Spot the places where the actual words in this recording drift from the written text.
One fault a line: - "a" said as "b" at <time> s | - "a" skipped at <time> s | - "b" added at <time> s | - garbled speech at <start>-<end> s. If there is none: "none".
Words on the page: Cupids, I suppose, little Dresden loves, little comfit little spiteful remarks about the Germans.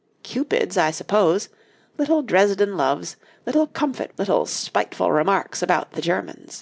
none